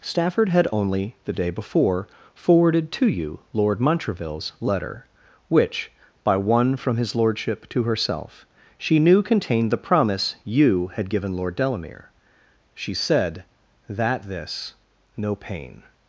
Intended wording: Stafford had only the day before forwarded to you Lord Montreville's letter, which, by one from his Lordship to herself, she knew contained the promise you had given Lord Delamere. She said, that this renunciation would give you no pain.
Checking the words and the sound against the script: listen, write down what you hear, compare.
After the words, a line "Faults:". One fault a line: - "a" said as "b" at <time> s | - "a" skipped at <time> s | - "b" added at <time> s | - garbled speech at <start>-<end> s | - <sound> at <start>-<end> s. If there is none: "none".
Stafford had only the day before forwarded to you Lord Montreville's letter, which, by one from his Lordship to herself, she knew contained the promise you had given Lord Delamere. She said, that this no pain.
Faults:
- "renunciation would give you" skipped at 14.7 s